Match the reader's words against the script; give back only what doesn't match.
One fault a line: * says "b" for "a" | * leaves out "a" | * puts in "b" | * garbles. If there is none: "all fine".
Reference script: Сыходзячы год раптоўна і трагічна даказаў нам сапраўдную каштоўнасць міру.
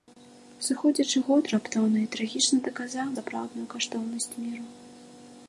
* leaves out "нам"